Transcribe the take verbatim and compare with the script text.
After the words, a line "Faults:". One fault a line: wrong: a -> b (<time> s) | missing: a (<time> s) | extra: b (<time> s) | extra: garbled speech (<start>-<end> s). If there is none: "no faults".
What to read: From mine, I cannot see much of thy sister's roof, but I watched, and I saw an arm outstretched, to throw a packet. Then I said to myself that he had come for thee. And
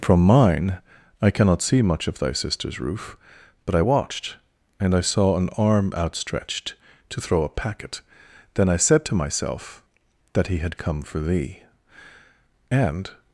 From mine, I cannot see much of thy sister's roof, but I watched, and I saw an arm outstretched, to throw a packet. Then I said to myself that he had come for thee. And
Faults:
no faults